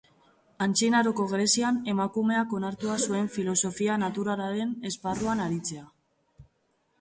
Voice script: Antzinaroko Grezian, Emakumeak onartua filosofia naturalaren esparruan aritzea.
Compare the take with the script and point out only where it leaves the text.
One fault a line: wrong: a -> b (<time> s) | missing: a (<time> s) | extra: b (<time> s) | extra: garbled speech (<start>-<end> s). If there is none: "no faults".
extra: zuen (3.1 s)